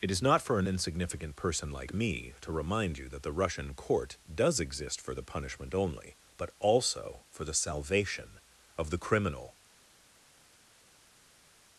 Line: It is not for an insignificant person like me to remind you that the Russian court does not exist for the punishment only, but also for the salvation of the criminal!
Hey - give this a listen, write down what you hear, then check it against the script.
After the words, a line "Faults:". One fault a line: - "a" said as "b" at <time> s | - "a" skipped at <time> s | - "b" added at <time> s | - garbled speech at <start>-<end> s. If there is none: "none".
It is not for an insignificant person like me to remind you that the Russian court does exist for the punishment only, but also for the salvation of the criminal!
Faults:
- "not" skipped at 4.6 s